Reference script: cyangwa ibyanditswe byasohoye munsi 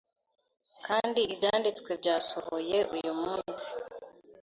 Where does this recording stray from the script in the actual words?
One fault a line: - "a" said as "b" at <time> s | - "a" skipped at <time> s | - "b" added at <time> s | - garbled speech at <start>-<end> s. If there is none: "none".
- "cyangwa" said as "kandi" at 0.9 s
- "uyu" added at 2.9 s